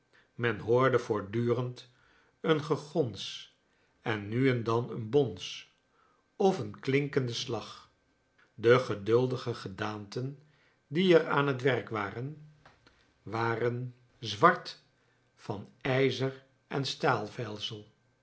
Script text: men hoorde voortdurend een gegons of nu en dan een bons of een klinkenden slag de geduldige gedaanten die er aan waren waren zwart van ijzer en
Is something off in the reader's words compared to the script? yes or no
yes